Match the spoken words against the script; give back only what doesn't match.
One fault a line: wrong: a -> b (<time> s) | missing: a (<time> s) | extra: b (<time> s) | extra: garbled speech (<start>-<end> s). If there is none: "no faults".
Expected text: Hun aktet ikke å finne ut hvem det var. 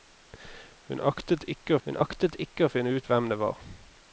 extra: hun aktet ikke (1.8 s)